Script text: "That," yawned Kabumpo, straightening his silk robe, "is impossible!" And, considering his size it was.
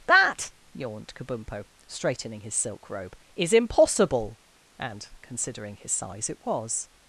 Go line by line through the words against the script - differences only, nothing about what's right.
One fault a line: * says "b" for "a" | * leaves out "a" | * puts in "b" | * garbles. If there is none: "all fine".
all fine